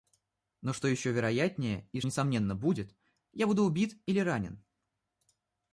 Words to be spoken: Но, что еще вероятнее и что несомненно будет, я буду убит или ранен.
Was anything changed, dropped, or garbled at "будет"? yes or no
no